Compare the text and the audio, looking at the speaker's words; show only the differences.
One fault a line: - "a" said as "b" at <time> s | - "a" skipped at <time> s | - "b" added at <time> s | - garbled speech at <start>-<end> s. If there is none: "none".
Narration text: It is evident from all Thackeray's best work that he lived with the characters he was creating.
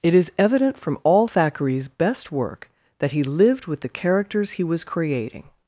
none